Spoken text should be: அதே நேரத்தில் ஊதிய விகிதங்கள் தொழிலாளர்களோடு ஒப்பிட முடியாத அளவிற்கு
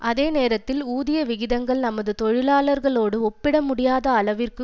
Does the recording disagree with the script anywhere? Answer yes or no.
yes